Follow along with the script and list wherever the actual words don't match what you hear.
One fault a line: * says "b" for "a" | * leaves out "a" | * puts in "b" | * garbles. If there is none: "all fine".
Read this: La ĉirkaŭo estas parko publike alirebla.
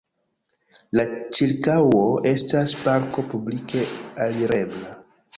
all fine